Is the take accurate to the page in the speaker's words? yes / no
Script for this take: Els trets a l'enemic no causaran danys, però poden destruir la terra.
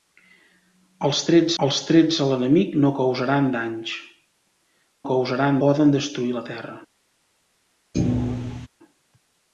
no